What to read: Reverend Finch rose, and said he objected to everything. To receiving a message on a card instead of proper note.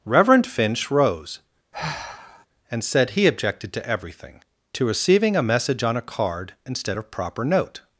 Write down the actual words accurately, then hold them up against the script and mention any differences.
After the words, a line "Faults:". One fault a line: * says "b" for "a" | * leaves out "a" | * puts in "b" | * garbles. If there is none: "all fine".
Reverend Finch rose, and said he objected to everything. To receiving a message on a card instead of proper note.
Faults:
all fine